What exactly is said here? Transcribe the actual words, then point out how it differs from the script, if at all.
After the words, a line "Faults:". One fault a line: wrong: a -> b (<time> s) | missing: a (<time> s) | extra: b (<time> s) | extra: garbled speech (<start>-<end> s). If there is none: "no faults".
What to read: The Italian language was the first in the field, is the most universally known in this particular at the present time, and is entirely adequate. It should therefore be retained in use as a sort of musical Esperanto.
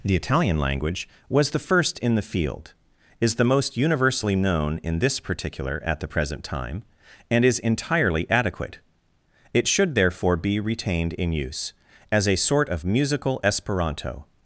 The Italian language was the first in the field, is the most universally known in this particular at the present time, and is entirely adequate. It should therefore be retained in use as a sort of musical Esperanto.
Faults:
no faults